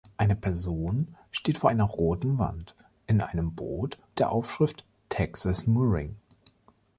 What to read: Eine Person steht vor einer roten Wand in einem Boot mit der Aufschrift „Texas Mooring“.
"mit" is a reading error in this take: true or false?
true